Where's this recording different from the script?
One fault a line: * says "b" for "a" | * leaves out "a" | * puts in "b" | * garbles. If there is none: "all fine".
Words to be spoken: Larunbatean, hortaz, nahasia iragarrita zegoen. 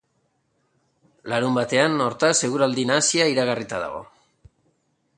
* puts in "eguraldi"
* says "dago" for "zegoen"